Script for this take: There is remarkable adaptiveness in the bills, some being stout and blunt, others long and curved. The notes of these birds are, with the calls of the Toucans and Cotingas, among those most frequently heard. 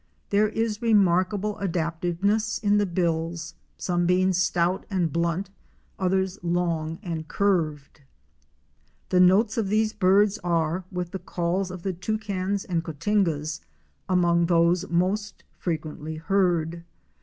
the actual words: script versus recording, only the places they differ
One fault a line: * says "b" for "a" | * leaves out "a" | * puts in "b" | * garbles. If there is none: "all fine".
all fine